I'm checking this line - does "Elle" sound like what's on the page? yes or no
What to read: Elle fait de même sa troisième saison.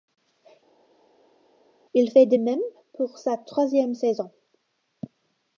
no